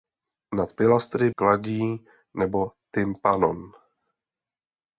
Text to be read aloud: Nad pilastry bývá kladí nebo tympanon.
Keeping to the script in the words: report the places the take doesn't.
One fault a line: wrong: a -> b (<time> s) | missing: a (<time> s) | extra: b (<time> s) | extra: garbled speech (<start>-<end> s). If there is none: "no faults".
missing: bývá (1.3 s)